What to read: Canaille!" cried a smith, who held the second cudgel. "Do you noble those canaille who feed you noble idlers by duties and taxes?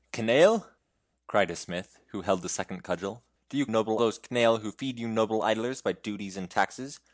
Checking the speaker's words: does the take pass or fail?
pass